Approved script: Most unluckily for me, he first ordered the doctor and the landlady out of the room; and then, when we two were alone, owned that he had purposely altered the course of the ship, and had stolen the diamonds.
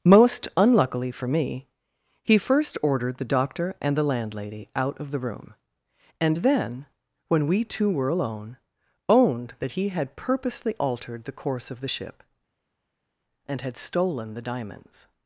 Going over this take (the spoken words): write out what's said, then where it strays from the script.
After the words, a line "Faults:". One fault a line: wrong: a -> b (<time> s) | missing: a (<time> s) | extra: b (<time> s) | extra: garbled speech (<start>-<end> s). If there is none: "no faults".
Most unluckily for me, he first ordered the doctor and the landlady out of the room; and then, when we two were alone, owned that he had purposely altered the course of the ship, and had stolen the diamonds.
Faults:
no faults